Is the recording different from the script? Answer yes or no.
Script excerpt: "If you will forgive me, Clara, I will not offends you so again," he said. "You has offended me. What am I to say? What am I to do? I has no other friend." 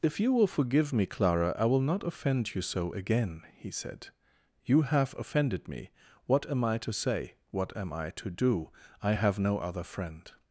yes